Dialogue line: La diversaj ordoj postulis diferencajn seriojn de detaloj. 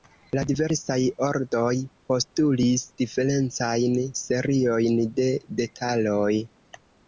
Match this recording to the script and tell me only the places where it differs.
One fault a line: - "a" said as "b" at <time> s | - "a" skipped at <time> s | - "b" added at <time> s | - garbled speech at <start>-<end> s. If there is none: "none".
none